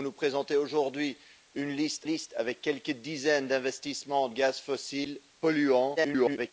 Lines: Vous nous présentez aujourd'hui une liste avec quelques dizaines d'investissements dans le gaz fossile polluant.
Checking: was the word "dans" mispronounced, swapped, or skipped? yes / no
yes